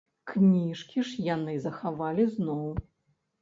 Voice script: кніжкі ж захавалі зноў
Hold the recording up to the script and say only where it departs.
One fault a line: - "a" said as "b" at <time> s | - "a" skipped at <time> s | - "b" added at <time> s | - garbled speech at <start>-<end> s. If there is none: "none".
- "яны" added at 1.3 s